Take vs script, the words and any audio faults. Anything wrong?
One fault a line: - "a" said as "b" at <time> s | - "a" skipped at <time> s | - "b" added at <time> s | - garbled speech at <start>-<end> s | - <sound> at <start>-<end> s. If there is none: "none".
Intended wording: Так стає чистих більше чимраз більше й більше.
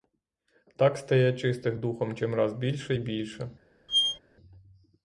- "більше" said as "духом" at 1.8 s
- squeak at 3.9-4.2 s